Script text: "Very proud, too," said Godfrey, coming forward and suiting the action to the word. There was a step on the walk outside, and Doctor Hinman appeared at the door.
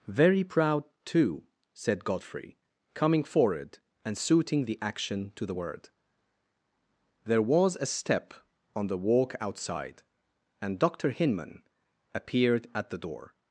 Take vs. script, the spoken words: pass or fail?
pass